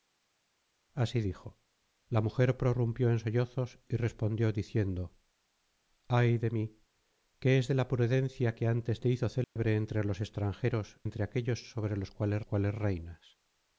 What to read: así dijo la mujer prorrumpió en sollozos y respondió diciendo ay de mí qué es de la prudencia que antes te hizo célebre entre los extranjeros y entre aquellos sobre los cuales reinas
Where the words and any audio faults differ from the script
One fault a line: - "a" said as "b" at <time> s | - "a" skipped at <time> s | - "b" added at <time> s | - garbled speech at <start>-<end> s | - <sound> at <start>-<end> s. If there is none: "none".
- dropout at 9.4-9.6 s
- "y" skipped at 11.0 s
- "cuales" added at 12.4 s